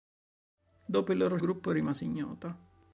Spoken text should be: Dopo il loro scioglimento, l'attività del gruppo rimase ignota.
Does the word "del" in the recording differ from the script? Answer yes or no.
yes